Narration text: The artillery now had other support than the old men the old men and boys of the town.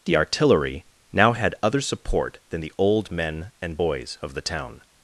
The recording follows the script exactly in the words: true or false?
false